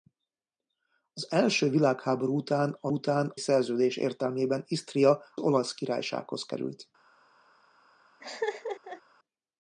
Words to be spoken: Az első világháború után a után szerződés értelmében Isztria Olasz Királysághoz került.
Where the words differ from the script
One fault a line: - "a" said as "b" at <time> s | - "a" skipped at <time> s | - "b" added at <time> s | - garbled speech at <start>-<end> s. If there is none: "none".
none